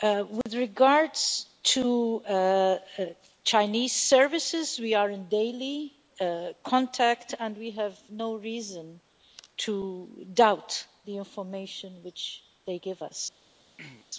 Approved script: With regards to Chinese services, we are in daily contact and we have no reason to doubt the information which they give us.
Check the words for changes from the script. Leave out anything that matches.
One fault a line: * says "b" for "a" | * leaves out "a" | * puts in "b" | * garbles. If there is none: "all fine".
all fine